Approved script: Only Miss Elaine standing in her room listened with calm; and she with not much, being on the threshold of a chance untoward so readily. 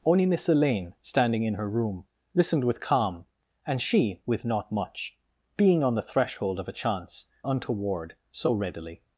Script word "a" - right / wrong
right